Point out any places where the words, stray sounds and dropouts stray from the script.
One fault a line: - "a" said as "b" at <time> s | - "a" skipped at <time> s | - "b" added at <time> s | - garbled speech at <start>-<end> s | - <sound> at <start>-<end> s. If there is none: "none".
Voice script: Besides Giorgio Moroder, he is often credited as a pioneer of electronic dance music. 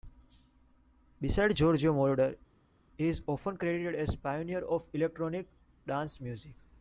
none